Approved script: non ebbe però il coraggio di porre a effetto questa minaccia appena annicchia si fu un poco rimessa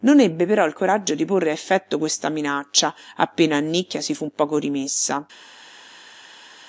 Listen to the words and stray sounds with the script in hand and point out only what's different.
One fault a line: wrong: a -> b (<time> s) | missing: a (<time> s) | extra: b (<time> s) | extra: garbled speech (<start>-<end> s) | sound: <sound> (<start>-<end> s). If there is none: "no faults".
no faults